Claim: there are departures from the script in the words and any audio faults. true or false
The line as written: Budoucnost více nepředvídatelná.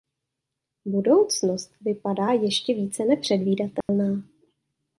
true